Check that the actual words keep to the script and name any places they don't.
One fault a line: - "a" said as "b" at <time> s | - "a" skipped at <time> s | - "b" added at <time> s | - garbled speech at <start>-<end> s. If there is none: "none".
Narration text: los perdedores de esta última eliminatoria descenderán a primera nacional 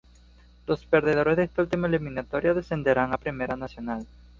none